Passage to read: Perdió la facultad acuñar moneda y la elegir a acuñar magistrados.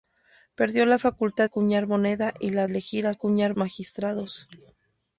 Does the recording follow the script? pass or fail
pass